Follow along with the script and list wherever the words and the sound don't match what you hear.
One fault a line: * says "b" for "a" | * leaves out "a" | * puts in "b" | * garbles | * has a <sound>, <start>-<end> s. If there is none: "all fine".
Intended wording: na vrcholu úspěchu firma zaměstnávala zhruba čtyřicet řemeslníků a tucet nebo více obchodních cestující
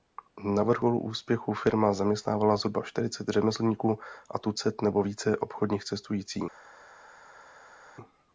all fine